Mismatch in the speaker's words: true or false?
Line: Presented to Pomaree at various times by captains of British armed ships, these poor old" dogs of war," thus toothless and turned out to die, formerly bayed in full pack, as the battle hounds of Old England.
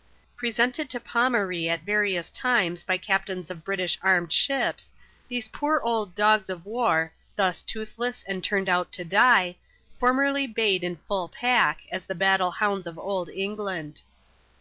false